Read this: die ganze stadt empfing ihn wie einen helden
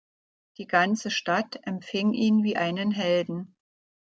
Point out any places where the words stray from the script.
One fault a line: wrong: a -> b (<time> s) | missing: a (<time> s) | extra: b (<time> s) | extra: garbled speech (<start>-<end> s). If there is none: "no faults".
no faults